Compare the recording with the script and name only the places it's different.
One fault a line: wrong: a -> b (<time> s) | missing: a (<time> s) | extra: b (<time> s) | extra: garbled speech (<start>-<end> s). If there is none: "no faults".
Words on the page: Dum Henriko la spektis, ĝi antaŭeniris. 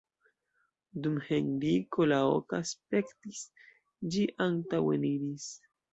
extra: oka (2.4 s)